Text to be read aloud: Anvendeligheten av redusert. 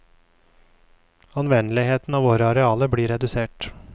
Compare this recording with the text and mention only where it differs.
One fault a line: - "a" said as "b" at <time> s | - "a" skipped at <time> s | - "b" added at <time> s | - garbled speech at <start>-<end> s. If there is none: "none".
- "våre arealer blir" added at 2.2 s